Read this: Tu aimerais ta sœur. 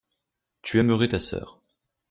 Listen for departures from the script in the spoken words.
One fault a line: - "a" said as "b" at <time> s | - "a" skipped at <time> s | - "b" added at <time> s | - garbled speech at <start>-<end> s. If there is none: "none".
none